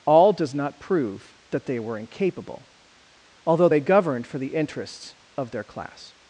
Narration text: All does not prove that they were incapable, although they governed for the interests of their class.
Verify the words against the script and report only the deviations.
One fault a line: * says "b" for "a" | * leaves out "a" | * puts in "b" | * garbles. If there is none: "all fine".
all fine